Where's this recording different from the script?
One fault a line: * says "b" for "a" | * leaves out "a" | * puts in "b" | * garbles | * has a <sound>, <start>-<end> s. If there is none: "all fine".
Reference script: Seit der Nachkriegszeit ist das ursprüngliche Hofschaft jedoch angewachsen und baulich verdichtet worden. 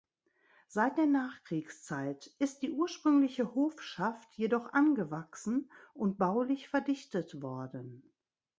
* says "die" for "das"